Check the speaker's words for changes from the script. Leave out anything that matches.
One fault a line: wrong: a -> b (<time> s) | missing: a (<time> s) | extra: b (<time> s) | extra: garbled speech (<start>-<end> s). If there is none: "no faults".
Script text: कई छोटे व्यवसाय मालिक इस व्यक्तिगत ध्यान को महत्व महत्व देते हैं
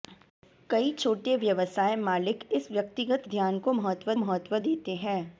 no faults